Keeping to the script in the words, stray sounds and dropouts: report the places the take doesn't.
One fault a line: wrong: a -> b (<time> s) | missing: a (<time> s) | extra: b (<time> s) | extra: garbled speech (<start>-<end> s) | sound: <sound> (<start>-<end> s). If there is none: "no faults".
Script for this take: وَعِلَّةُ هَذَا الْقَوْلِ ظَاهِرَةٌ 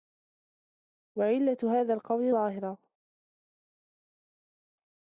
no faults